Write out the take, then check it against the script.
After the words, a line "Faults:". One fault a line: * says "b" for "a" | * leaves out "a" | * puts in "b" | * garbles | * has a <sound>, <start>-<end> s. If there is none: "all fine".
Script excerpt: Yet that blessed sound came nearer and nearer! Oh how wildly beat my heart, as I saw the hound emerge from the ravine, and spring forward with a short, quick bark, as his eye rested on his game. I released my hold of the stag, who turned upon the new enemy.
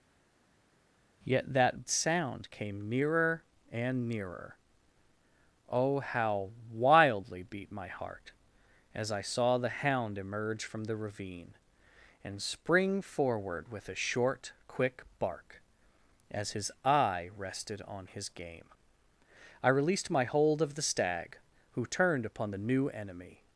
Yet that sound came nearer and nearer! Oh how wildly beat my heart, as I saw the hound emerge from the ravine, and spring forward with a short, quick bark, as his eye rested on his game. I released my hold of the stag, who turned upon the new enemy.
Faults:
* leaves out "blessed"